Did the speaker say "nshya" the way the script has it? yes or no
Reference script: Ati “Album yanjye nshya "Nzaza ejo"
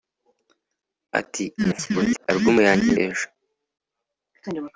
no